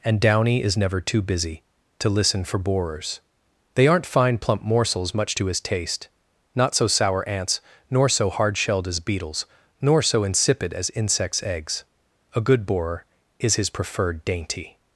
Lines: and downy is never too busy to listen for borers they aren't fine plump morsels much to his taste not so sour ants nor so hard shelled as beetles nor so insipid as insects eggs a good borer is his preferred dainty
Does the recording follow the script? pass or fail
pass